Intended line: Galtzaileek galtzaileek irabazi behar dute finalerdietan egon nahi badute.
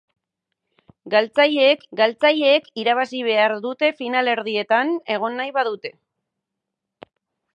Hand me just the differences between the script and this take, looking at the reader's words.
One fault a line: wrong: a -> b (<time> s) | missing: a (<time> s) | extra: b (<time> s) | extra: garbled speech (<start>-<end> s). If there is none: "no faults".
no faults